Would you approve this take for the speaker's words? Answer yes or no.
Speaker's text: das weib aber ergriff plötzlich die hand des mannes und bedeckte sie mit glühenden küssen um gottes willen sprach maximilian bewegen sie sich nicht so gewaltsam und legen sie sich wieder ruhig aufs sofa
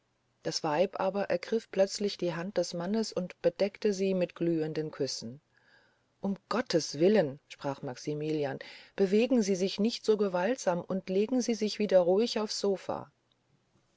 yes